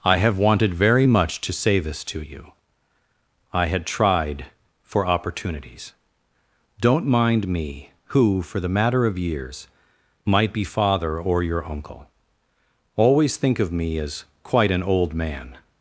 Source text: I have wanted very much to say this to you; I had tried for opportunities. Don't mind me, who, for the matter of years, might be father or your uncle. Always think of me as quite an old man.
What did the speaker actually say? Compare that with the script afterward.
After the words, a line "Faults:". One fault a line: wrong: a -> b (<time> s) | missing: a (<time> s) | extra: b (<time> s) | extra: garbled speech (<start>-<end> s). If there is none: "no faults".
I have wanted very much to say this to you; I had tried for opportunities. Don't mind me, who, for the matter of years, might be father or your uncle. Always think of me as quite an old man.
Faults:
no faults